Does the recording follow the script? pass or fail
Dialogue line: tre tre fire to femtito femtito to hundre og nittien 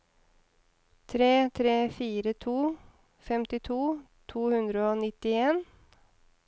fail